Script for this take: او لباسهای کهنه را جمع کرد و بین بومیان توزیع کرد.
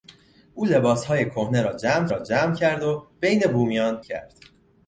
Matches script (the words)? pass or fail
fail